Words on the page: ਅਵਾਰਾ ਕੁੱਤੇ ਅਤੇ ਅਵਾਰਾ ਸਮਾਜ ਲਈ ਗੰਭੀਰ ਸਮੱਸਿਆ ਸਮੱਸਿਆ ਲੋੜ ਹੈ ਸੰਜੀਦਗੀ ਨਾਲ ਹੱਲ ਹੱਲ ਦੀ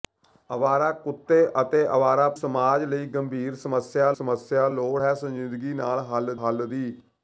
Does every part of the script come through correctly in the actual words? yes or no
yes